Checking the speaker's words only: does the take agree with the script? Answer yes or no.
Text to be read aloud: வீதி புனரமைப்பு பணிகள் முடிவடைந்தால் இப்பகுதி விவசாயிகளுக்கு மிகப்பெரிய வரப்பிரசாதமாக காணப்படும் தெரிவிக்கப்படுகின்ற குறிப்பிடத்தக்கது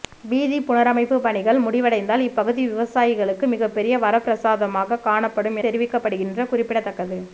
yes